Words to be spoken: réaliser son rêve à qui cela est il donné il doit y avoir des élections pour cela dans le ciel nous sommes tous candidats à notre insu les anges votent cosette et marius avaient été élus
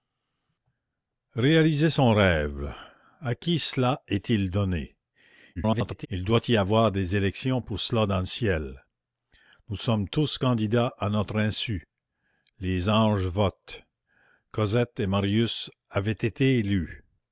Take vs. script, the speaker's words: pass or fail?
fail